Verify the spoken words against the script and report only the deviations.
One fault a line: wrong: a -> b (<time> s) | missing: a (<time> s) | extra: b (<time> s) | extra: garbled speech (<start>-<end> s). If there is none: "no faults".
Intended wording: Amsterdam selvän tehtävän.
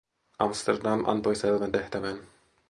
extra: antoi (1.1 s)